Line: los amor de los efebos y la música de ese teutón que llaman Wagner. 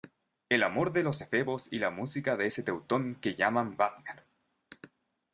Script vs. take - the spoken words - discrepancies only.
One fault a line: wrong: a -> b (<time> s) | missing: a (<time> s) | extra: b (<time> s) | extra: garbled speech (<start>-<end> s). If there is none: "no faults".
wrong: los -> el (0.5 s)